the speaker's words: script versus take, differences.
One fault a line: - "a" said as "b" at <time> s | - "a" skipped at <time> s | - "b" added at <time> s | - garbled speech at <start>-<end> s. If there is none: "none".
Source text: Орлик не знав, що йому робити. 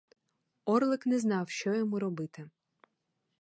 none